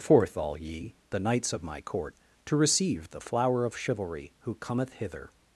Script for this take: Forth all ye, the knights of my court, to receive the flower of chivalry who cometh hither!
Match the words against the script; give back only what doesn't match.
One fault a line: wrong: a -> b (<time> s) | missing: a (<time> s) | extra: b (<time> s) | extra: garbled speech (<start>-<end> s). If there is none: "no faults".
no faults